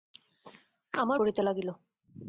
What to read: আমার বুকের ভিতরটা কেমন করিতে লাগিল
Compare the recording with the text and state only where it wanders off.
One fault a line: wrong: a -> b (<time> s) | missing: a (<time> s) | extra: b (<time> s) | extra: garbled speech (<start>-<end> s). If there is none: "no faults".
missing: বুকের ভিতরটা কেমন (1.2 s)